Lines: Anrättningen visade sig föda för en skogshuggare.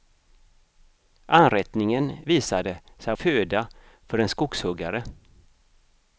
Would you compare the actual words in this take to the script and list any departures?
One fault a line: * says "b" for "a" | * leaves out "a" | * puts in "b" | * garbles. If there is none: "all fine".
all fine